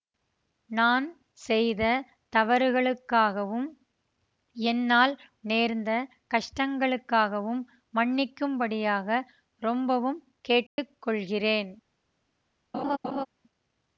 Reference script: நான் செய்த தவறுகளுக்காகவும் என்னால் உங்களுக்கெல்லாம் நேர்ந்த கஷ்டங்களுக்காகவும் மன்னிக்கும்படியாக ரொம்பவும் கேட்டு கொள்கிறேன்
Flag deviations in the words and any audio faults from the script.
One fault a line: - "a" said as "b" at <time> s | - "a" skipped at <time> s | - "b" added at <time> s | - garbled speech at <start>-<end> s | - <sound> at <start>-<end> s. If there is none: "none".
- "உங்களுக்கெல்லாம்" skipped at 5.1 s
- dropout at 10.7-10.8 s
- laugh at 12.7-13.3 s